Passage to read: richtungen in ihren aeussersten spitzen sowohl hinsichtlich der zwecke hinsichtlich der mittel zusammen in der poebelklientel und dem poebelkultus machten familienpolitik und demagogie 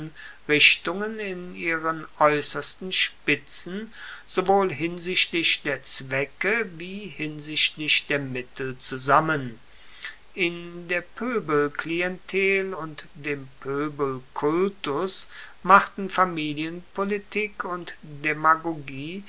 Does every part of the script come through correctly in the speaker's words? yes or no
no